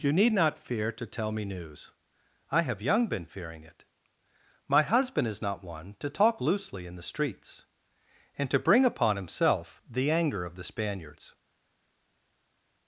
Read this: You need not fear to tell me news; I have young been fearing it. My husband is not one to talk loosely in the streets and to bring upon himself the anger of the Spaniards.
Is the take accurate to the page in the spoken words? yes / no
yes